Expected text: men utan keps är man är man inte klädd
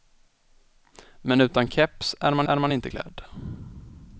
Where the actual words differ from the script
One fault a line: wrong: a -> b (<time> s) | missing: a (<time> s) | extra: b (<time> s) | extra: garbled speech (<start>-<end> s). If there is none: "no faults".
no faults